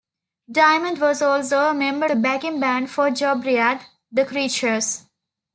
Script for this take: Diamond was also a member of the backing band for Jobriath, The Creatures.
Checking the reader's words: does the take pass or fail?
fail